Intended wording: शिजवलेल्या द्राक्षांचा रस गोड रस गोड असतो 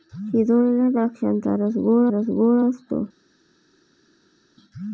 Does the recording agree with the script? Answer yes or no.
yes